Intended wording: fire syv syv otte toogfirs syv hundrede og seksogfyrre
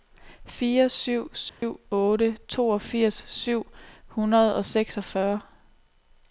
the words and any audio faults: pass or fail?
fail